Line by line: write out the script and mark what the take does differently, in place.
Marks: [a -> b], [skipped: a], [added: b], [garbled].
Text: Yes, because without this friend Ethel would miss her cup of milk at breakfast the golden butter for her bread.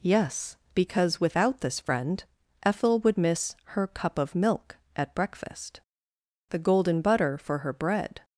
Yes, because without this friend Ethel would miss her cup of milk at breakfast the golden butter for her bread.